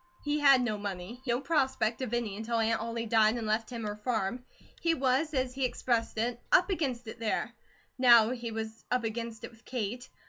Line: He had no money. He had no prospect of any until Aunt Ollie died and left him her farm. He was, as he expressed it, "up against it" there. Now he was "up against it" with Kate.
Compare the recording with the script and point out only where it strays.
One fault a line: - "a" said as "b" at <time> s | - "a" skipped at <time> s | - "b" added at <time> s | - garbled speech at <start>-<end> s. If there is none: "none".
- "had" skipped at 1.3 s